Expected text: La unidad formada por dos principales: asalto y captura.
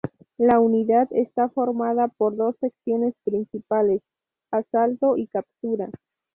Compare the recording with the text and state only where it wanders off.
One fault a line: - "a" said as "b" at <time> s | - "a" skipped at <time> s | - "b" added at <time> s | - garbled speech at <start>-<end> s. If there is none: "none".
- "está" added at 1.1 s
- "secciones" added at 2.6 s